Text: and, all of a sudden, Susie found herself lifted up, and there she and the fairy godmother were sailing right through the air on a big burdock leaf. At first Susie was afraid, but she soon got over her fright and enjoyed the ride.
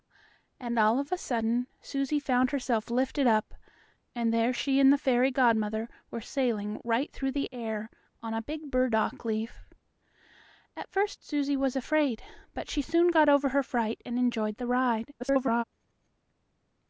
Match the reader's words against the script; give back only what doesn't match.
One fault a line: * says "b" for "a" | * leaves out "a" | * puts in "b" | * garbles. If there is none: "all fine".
* garbles